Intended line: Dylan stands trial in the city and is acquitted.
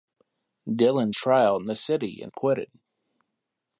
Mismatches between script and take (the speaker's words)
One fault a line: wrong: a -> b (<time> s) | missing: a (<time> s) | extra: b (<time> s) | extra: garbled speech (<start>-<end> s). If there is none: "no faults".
missing: stands (1.1 s)
missing: is (2.3 s)